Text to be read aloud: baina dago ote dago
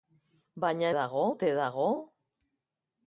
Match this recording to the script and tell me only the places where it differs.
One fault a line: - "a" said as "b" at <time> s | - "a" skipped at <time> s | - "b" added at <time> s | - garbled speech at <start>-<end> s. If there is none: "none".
none